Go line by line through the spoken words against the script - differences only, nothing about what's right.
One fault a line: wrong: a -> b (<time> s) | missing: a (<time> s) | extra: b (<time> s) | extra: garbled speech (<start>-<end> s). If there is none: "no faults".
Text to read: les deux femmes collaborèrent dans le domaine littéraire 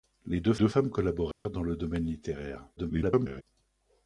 extra: deux (0.6 s)
extra: garbled speech (2.8-3.4 s)